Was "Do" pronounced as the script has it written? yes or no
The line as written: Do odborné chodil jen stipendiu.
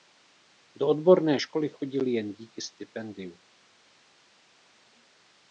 yes